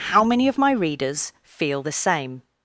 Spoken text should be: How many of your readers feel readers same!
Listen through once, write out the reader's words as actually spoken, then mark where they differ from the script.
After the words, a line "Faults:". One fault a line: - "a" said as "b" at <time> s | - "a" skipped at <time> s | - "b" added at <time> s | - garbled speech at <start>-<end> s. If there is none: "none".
How many of my readers feel the same!
Faults:
- "your" said as "my" at 0.6 s
- "readers" said as "the" at 1.8 s